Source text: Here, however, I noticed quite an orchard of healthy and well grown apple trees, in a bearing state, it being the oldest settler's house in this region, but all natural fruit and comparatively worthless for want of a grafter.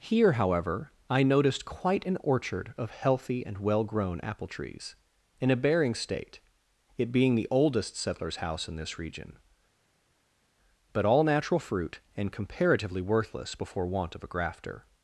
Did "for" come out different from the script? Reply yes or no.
yes